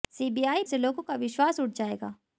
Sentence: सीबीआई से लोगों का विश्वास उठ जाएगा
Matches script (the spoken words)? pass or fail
pass